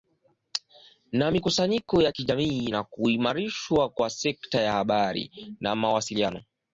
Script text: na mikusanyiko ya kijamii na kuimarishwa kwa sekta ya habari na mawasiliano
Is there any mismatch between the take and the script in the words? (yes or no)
no